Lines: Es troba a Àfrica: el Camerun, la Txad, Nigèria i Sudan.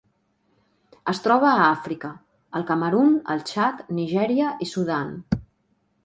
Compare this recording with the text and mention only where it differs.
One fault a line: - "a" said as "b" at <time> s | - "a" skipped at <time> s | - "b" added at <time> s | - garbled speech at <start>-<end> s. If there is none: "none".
- "la" said as "el" at 3.3 s